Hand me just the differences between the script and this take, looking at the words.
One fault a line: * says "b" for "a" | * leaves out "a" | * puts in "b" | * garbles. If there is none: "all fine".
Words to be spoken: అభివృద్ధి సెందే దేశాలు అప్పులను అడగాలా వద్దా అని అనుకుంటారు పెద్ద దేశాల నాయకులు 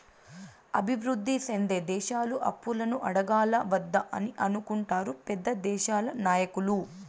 all fine